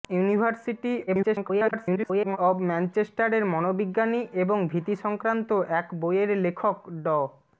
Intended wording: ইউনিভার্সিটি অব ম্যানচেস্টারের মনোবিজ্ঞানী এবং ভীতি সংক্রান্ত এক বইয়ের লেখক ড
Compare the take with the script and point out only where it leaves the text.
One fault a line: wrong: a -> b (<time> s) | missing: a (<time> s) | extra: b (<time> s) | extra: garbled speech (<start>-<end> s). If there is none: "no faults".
extra: garbled speech (1.1-2.4 s)